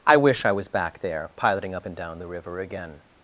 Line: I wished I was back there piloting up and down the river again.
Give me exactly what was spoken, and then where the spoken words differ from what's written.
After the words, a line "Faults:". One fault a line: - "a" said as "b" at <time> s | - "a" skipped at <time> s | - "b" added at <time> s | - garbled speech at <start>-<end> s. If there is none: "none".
I wish I was back there piloting up and down the river again.
Faults:
- "wished" said as "wish" at 0.2 s